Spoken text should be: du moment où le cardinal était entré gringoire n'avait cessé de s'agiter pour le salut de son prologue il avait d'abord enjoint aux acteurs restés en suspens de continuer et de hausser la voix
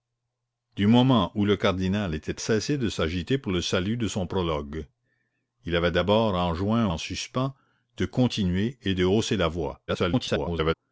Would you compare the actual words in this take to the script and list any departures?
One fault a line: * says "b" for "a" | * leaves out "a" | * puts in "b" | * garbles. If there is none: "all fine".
* leaves out "entré gringoire n'avait"
* leaves out "aux acteurs restés"
* garbles